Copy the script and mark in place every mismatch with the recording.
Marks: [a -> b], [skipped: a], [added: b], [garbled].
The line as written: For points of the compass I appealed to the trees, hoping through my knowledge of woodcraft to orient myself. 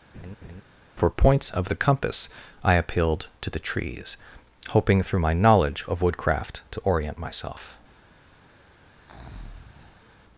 For points of the compass I appealed to the trees, hoping through my knowledge of woodcraft to orient myself.